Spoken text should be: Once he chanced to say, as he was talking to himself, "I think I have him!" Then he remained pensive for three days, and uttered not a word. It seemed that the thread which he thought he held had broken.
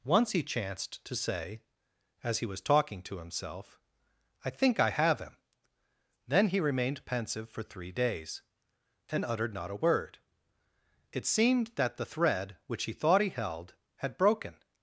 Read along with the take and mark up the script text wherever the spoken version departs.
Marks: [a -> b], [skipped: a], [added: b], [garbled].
Once he chanced to say, as he was talking to himself, "I think I have him!" Then he remained pensive for three days, and uttered not a word. It seemed that the thread which he thought he held had broken.